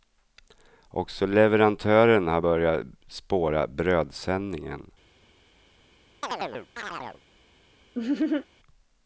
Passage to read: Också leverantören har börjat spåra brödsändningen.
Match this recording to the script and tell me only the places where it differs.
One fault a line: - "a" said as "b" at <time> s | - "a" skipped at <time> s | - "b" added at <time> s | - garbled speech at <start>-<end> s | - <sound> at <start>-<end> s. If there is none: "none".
- chirp at 6.2-7.2 s
- laugh at 7.9-8.5 s